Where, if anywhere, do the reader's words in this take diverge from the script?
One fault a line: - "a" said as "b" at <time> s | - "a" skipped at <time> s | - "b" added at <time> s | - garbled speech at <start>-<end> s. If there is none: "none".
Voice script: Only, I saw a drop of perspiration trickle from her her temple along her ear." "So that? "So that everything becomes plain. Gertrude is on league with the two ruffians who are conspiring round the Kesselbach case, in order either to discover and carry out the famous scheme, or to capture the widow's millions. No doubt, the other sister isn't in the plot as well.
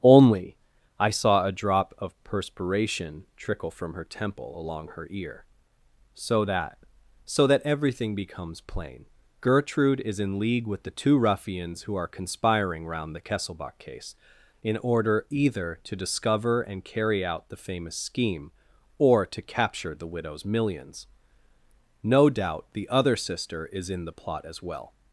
- "her" skipped at 4.0 s
- "on" said as "in" at 10.2 s
- "isn't" said as "is" at 23.7 s